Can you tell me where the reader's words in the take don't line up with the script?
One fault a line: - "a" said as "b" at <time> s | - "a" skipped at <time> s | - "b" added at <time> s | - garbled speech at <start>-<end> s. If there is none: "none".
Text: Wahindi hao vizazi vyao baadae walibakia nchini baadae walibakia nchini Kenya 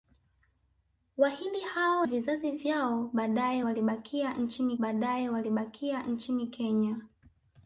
none